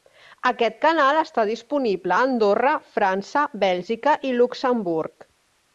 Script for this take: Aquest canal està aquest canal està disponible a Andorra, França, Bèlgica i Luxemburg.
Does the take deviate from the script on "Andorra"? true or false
false